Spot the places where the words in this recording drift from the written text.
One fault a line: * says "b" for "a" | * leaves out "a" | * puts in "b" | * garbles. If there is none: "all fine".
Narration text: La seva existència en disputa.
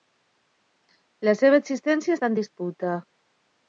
* puts in "està"